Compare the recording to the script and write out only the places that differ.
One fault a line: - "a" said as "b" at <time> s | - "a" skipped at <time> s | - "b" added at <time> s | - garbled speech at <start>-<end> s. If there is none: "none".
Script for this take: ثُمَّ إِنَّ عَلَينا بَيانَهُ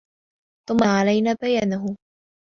- "إِنَّ" skipped at 0.8 s